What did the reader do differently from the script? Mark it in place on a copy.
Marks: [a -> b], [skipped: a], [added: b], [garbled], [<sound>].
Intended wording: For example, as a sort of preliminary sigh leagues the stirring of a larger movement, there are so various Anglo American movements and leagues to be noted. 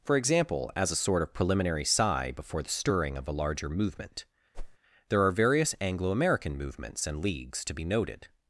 For example, as a sort of preliminary sigh [leagues -> before] the stirring of a larger movement, [whoosh] there are [skipped: so] various Anglo American movements and leagues to be noted.